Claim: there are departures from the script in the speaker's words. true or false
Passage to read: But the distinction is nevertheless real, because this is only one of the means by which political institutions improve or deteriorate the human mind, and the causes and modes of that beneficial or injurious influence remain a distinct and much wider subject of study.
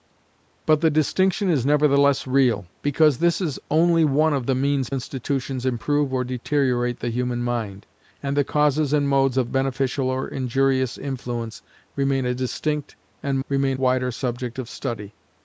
true